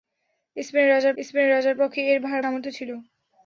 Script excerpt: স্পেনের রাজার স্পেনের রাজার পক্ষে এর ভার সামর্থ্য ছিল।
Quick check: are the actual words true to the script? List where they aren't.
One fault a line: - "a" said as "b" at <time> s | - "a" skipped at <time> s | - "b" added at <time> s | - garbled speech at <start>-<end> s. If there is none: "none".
none